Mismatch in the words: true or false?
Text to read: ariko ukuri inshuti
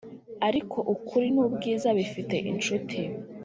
true